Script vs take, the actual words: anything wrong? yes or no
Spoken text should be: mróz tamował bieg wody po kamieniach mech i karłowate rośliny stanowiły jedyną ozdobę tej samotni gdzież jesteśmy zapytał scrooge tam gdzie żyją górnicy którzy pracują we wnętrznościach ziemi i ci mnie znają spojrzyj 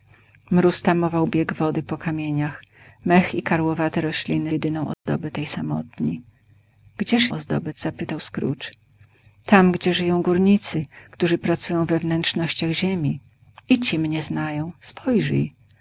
yes